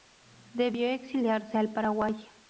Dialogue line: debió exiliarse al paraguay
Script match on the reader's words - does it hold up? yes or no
yes